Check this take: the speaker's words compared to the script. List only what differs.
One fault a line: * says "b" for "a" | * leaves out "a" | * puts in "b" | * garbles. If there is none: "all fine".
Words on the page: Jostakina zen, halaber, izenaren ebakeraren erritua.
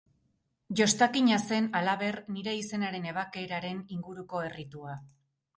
* puts in "nire"
* puts in "inguruko"